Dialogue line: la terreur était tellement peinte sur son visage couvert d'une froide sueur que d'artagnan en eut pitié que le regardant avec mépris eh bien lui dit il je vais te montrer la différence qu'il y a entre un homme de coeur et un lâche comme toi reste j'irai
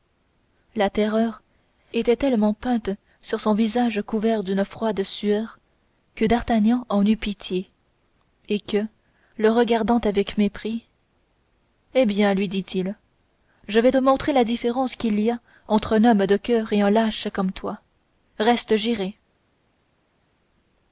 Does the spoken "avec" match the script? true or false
true